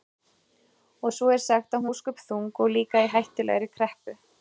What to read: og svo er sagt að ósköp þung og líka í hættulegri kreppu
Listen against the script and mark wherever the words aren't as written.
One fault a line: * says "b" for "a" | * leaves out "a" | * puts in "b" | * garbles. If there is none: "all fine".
all fine